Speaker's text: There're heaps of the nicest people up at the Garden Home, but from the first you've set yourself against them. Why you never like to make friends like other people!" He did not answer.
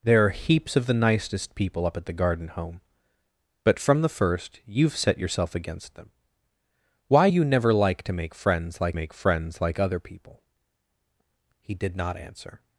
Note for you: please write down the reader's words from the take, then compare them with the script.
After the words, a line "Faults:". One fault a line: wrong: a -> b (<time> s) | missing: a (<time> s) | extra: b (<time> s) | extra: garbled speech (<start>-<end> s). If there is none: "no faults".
There're heaps of the nicest people up at the Garden Home, but from the first you've set yourself against them. Why you never like to make friends like make friends like other people!" He did not answer.
Faults:
extra: make friends like (8.9 s)